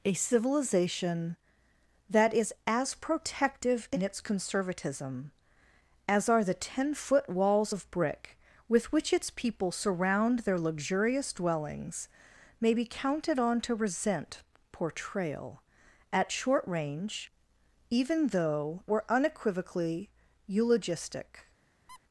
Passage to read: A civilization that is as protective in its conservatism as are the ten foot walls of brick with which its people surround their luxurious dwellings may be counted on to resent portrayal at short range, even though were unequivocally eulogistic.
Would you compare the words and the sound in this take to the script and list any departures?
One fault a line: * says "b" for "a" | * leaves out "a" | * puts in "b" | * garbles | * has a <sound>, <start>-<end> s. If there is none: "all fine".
* has a squeak, 21.9-22.0 s